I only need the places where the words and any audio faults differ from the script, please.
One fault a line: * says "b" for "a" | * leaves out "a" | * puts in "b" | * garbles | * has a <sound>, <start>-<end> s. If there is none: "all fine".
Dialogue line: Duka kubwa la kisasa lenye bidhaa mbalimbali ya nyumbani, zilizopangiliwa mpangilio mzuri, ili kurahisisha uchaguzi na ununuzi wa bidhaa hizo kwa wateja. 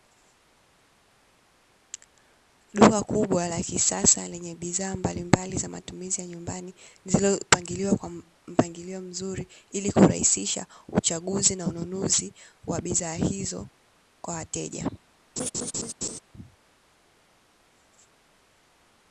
* puts in "za matumizi"
* puts in "kwa"
* has a laugh, 15.4-16.2 s